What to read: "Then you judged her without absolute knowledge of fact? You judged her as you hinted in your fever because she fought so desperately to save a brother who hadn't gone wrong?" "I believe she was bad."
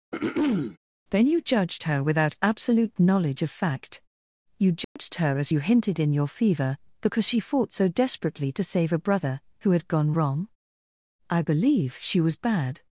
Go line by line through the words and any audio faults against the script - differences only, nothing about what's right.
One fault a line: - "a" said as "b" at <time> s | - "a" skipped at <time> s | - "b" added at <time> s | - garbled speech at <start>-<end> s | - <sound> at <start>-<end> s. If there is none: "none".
- throat clearing at 0.1-0.8 s
- dropout at 4.8-5.0 s
- "hadn't" said as "had" at 9.7 s